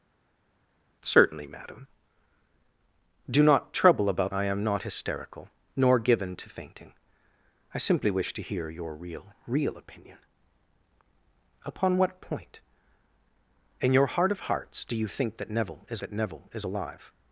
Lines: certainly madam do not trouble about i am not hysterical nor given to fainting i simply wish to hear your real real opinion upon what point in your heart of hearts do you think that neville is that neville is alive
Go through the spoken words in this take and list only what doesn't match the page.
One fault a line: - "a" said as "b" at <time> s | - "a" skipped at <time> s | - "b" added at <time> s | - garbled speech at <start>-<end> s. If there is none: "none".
none